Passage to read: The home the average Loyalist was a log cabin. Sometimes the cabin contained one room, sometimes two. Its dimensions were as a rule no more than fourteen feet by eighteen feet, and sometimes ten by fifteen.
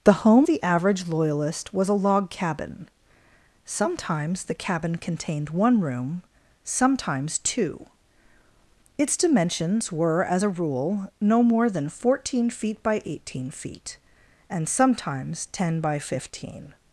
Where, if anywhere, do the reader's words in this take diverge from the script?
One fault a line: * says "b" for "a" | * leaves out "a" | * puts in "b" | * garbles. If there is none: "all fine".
all fine